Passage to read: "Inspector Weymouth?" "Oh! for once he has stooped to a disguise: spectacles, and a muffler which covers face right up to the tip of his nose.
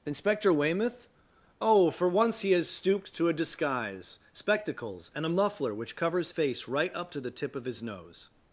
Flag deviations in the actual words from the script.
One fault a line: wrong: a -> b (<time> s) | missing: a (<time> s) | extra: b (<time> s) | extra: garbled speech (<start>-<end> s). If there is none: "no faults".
no faults